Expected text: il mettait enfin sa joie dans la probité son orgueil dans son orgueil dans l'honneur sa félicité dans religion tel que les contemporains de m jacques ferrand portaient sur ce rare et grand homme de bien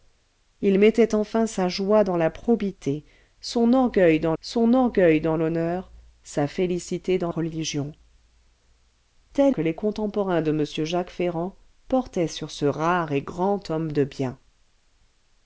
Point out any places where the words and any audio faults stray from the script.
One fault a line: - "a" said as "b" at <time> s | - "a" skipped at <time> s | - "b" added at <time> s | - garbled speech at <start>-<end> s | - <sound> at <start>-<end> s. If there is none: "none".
none